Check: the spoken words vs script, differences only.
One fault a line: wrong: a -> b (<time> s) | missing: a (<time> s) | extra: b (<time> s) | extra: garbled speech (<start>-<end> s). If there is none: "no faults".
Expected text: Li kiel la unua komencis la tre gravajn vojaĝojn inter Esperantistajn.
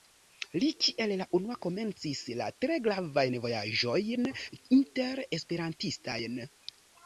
no faults